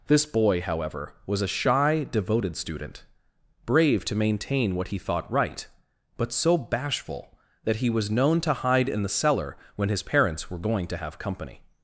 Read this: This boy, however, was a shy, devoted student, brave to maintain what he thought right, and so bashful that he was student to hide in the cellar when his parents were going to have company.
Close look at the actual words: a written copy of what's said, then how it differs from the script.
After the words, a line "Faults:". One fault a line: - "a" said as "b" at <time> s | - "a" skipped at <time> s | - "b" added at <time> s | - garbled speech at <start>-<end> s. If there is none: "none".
This boy, however, was a shy, devoted student, brave to maintain what he thought right, but so bashful that he was known to hide in the cellar when his parents were going to have company.
Faults:
- "and" said as "but" at 6.2 s
- "student" said as "known" at 8.1 s